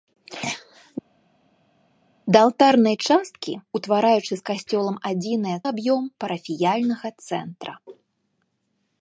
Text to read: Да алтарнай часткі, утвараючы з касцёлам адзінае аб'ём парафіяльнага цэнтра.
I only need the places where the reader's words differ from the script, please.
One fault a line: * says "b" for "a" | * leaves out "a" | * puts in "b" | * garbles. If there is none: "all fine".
all fine